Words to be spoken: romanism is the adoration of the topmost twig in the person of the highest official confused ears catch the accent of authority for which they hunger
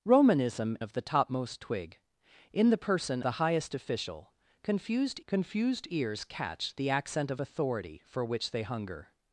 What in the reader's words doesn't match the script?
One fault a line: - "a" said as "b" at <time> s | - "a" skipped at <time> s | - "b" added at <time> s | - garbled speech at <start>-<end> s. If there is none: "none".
- "is the adoration" skipped at 0.8 s
- "of" skipped at 3.2 s
- "confused" added at 5.3 s